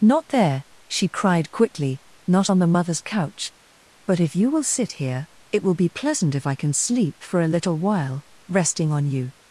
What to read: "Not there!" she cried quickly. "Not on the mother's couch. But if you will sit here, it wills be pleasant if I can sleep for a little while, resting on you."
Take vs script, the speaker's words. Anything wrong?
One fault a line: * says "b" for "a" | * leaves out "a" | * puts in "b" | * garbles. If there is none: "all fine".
* says "will" for "wills"